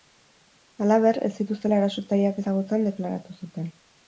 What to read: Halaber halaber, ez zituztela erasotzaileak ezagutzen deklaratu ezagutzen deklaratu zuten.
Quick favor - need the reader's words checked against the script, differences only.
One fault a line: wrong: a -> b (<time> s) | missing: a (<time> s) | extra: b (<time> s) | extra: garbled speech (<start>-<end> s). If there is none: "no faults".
missing: halaber (1.2 s)
missing: ezagutzen deklaratu (3.4 s)